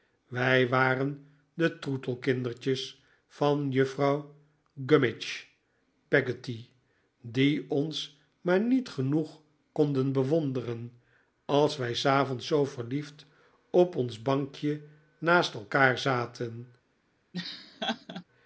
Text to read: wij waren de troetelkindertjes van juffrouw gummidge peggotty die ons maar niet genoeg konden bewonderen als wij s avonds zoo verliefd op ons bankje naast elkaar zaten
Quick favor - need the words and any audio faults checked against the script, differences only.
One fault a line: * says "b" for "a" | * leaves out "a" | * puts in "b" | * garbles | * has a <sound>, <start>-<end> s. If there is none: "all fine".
* has a laugh, 17.3-18.2 s